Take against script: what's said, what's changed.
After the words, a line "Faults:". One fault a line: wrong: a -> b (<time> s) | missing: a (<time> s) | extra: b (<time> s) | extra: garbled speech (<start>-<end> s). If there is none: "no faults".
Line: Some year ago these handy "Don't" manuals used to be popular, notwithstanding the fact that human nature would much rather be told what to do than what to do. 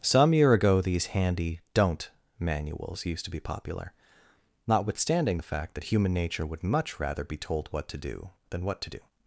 Some year ago these handy "Don't" manuals used to be popular, notwithstanding the fact that human nature would much rather be told what to do than what to do.
Faults:
no faults